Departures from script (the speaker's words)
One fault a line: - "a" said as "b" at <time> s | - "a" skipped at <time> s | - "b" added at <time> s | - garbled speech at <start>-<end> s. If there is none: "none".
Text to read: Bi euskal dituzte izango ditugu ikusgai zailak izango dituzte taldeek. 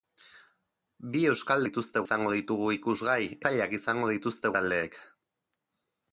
none